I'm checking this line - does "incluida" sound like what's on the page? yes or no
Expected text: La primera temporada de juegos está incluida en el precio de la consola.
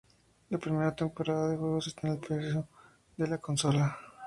no